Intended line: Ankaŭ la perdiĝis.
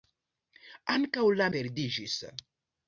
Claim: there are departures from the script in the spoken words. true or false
false